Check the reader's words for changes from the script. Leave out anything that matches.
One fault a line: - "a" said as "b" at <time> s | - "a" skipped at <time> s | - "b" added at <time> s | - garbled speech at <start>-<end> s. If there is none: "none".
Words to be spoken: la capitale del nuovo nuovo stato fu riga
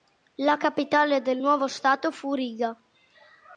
- "nuovo" skipped at 1.7 s